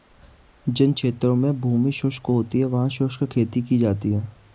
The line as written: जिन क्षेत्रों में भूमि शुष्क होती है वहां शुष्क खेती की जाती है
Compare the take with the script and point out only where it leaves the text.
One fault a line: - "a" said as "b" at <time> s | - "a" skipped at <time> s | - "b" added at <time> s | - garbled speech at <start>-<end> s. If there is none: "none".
none